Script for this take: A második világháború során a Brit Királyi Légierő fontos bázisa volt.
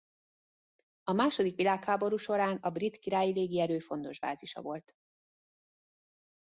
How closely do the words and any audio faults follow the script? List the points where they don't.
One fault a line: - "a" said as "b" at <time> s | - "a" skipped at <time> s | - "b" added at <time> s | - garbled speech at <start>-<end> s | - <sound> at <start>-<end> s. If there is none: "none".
none